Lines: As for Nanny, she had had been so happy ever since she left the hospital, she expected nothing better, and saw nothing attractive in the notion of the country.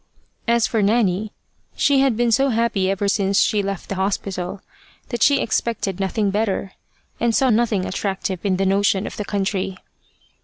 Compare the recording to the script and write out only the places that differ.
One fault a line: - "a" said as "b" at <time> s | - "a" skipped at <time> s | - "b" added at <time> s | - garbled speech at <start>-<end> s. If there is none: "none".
- "had" skipped at 2.2 s
- "that" added at 5.1 s